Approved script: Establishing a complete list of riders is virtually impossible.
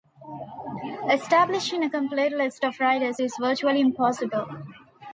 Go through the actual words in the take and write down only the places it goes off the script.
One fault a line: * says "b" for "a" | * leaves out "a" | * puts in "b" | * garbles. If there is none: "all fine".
all fine